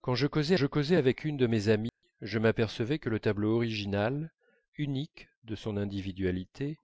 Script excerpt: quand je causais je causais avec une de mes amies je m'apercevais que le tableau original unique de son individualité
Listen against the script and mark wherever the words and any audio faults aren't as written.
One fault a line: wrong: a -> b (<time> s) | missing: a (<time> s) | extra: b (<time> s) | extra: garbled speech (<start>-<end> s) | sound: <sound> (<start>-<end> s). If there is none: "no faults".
sound: dropout (1.9-2.0 s)